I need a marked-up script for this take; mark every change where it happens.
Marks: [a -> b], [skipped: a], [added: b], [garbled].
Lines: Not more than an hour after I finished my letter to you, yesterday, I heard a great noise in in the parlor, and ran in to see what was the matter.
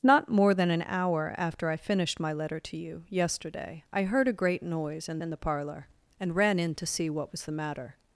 Not more than an hour after I finished my letter to you, yesterday, I heard a great noise in in the parlor, and ran in to see what was the matter.